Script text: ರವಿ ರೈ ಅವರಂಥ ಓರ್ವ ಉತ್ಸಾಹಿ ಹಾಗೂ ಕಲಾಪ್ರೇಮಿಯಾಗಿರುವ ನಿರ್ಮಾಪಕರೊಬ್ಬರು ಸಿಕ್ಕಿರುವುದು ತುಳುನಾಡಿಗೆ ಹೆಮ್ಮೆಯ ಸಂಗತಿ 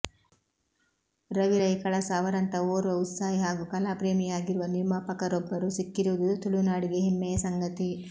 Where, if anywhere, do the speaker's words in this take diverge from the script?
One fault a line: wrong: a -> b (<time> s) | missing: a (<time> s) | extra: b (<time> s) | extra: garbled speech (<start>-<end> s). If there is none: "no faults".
extra: ಕಳಸ (1.8 s)